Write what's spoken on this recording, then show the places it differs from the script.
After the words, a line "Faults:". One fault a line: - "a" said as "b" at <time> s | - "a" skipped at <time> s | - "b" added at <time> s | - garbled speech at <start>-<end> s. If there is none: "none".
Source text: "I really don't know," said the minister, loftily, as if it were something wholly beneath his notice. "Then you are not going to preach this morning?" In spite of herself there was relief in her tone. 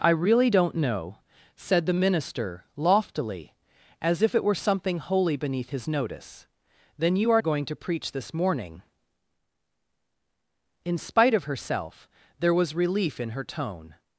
"I really don't know," said the minister, loftily, as if it were something wholly beneath his notice. "Then you are going to preach this morning?" In spite of herself there was relief in her tone.
Faults:
- "not" skipped at 7.4 s